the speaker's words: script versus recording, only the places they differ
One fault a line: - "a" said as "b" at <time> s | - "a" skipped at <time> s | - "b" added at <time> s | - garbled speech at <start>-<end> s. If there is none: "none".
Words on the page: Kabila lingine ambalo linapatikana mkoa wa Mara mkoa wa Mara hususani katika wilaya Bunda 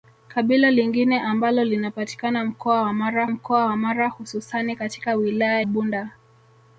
none